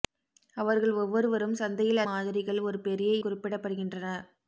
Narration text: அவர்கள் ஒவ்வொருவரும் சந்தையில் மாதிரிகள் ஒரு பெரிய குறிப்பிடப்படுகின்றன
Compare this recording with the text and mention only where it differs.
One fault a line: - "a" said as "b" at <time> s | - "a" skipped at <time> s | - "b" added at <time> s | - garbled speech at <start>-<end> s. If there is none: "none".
none